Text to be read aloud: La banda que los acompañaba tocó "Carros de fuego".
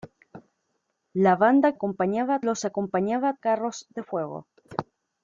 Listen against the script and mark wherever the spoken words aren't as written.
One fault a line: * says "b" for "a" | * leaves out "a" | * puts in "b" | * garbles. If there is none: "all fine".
* says "acompañaba" for "que"
* leaves out "tocó"